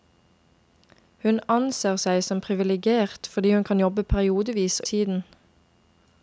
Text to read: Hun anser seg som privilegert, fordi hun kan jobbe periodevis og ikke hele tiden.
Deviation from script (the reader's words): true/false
true